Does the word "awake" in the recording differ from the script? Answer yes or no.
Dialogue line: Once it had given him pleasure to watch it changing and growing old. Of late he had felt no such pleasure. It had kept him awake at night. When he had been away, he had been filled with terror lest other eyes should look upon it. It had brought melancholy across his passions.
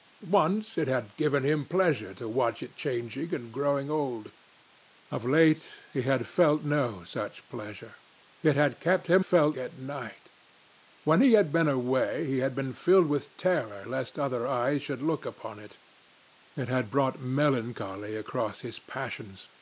yes